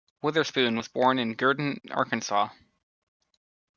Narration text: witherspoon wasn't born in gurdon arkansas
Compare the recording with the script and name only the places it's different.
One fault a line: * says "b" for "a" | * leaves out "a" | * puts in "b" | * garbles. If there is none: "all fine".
* says "was" for "wasn't"